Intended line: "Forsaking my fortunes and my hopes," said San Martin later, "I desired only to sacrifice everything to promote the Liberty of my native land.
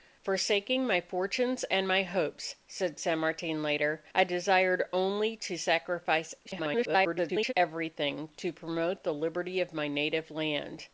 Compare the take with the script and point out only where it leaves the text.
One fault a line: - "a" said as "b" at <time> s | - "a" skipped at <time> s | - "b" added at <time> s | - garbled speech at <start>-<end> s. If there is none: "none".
- garbled speech at 6.4-7.5 s